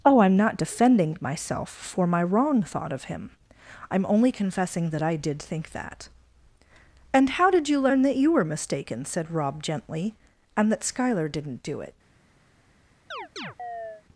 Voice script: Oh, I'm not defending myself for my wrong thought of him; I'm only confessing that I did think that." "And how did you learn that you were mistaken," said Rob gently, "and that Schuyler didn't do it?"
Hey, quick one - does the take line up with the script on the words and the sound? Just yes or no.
no